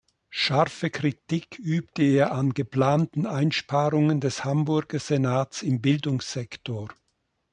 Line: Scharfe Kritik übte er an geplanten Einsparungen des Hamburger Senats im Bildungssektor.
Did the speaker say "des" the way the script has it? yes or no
yes